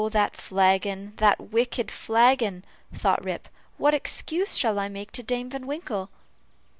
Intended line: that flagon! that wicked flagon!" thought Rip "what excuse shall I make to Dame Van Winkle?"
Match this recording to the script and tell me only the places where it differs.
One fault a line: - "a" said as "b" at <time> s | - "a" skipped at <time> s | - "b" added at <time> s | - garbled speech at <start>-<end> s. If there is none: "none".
none